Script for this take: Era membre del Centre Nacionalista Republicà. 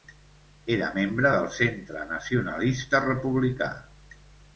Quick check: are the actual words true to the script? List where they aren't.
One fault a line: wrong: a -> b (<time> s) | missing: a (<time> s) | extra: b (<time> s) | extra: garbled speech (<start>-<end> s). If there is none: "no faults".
no faults